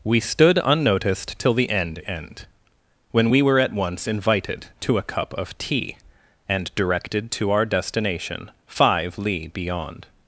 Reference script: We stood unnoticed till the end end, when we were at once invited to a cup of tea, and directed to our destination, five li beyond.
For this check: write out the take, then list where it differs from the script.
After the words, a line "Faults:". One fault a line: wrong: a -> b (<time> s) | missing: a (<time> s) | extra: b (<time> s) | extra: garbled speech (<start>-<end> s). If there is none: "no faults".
We stood unnoticed till the end end, when we were at once invited to a cup of tea, and directed to our destination, five li beyond.
Faults:
no faults